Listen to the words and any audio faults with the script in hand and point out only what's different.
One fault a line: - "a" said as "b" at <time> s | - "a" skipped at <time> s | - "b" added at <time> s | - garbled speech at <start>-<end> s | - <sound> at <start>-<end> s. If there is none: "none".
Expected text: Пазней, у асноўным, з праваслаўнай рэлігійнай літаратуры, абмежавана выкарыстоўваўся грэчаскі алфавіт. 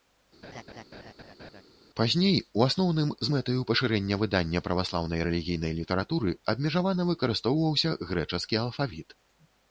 - laugh at 0.4-1.6 s
- "мэтаю пашырэння выдання" added at 3.3 s